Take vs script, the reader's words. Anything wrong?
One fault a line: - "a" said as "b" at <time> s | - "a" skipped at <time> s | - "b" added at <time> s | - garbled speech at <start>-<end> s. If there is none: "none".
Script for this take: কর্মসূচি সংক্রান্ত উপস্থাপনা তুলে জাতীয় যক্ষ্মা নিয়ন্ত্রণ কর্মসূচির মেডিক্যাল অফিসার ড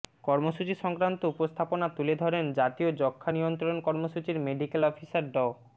- "ধরেন" added at 2.1 s